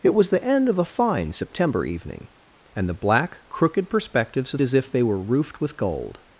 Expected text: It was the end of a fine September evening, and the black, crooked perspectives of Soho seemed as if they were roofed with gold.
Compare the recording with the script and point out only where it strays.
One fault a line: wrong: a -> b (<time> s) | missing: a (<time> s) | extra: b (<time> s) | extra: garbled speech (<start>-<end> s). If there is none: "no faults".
missing: Soho seemed (4.6 s)